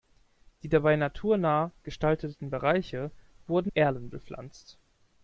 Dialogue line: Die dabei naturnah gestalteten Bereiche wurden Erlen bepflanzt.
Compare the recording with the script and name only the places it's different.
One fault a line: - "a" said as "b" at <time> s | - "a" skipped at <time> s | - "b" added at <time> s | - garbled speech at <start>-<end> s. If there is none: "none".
none